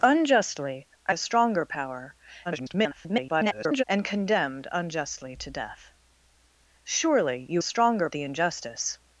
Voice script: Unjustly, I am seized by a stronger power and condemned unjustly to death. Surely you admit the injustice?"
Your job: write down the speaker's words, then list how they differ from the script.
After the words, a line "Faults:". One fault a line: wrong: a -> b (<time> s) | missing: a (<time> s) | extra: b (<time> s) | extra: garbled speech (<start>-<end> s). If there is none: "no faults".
Unjustly, I a stronger power [garbled] and condemned unjustly to death. Surely you stronger the injustice?"
Faults:
missing: am seized by (1.1 s)
extra: garbled speech (2.4-3.8 s)
wrong: admit -> stronger (7.6 s)